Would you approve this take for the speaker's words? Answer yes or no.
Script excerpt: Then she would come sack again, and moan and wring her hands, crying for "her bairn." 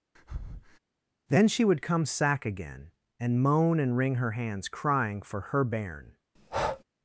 yes